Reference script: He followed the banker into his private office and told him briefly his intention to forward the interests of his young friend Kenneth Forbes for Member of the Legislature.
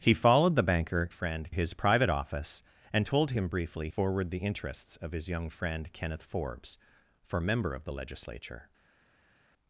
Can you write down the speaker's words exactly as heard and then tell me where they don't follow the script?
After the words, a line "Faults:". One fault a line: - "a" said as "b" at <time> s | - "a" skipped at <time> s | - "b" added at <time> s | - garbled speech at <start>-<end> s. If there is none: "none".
He followed the banker friend his private office and told him briefly forward the interests of his young friend Kenneth Forbes for Member of the Legislature.
Faults:
- "into" said as "friend" at 1.1 s
- "his intention to" skipped at 3.9 s